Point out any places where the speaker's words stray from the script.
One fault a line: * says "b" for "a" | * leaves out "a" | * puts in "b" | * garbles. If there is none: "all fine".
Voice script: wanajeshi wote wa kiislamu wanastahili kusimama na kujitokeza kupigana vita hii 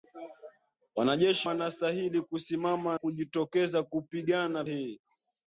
* leaves out "wote wa kiislamu"
* leaves out "na"
* leaves out "vita"